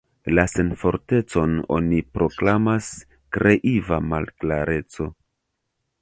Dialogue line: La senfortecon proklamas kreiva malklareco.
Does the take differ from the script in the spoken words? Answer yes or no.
yes